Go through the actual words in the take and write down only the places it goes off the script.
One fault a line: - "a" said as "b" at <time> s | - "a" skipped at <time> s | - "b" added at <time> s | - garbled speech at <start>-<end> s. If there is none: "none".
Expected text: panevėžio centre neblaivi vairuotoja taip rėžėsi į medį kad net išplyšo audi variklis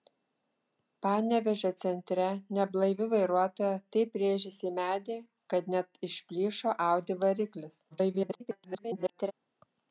- garbled speech at 7.9-9.3 s